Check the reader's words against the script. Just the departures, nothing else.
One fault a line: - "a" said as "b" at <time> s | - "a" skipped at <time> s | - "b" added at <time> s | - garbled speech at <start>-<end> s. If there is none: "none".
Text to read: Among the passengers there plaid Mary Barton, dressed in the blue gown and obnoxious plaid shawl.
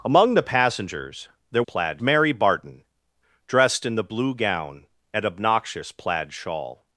none